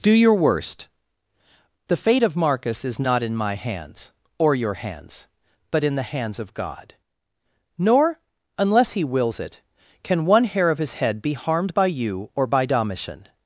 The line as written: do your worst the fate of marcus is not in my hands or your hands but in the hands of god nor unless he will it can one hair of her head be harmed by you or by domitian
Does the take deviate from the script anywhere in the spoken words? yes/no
yes